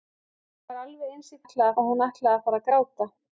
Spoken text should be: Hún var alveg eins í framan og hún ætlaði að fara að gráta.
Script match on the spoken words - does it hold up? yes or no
no